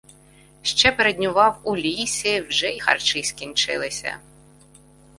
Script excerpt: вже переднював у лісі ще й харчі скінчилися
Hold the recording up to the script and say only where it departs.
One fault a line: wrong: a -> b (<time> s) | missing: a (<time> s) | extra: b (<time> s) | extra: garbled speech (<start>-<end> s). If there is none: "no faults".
wrong: вже -> ще (0.6 s)
wrong: ще -> вже (2.4 s)